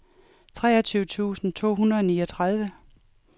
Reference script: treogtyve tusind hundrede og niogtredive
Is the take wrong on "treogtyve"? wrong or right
right